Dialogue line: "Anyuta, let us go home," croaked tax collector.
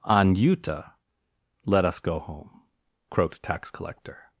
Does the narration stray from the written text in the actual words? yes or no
no